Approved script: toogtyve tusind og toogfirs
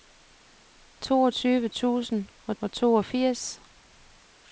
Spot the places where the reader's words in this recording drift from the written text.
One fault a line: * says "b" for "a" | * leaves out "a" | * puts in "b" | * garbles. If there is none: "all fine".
* puts in "og"